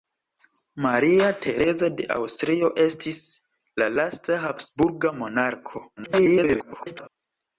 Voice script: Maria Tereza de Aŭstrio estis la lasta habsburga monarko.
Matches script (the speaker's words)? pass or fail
fail